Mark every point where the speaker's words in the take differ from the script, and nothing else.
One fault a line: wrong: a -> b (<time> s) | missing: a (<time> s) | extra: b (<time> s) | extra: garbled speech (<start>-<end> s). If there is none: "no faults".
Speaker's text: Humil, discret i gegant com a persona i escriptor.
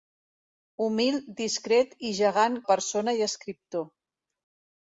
missing: com (2.6 s)